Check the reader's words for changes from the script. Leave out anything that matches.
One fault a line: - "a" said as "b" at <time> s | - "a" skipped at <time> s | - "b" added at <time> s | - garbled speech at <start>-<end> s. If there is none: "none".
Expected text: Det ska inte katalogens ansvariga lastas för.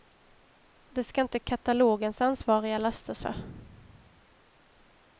none